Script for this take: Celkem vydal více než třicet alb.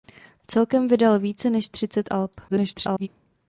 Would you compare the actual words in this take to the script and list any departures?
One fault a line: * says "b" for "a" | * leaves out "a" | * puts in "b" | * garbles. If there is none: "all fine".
* garbles